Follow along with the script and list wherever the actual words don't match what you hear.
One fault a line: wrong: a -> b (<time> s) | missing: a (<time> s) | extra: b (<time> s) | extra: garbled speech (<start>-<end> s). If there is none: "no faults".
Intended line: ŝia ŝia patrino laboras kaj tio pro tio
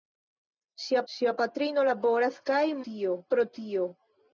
no faults